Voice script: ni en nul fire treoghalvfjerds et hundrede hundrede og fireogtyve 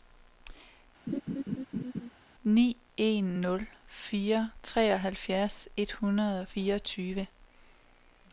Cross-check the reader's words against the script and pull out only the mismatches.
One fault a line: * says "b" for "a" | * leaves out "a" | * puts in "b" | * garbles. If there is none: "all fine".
* leaves out "hundrede"